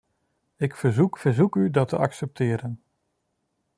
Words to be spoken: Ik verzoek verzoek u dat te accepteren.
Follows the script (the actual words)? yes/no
yes